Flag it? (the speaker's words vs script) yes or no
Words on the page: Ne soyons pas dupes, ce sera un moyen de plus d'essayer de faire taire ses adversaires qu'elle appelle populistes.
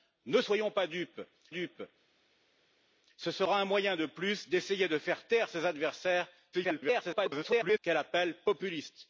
yes